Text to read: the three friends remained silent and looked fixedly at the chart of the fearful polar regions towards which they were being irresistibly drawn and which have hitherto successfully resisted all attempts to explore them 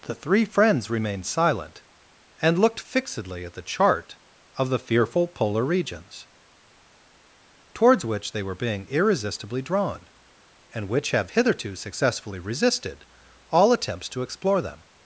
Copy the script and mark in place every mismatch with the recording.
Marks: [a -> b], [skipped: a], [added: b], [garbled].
the three friends remained silent and looked fixedly at the chart of the fearful polar regions towards which they were being irresistibly drawn and which have hitherto successfully resisted all attempts to explore them